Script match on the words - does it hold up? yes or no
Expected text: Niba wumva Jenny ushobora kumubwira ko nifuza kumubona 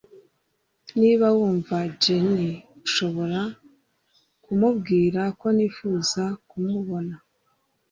yes